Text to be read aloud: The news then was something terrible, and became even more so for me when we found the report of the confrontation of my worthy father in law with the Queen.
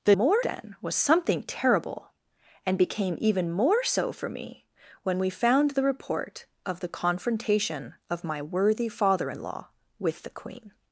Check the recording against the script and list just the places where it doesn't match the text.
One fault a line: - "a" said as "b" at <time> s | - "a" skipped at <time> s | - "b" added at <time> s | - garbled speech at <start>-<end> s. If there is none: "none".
- "news" said as "more" at 0.1 s